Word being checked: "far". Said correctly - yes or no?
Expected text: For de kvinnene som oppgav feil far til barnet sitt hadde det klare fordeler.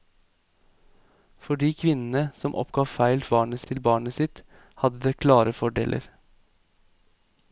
no